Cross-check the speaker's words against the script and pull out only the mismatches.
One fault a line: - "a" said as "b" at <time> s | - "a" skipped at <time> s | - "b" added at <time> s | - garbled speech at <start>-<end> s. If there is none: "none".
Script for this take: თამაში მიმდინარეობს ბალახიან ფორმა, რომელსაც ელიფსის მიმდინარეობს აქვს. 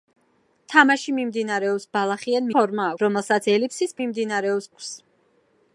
none